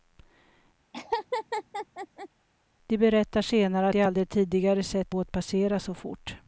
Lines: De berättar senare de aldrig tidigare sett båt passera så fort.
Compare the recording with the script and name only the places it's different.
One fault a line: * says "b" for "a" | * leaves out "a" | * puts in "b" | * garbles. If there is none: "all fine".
all fine